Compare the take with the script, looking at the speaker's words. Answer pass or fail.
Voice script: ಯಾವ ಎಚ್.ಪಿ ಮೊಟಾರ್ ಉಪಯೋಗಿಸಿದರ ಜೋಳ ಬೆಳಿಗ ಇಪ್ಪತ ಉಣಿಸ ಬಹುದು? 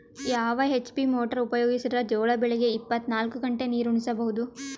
fail